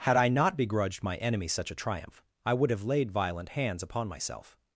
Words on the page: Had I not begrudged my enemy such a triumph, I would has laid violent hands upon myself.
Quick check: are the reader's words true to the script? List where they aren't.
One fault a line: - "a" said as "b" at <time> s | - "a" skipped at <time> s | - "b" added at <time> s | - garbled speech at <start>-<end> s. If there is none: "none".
- "has" said as "have" at 2.7 s